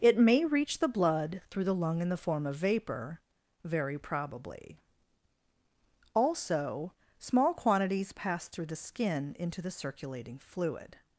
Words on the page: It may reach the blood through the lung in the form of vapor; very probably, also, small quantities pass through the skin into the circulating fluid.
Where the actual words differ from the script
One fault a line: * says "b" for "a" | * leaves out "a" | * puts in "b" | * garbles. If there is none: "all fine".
all fine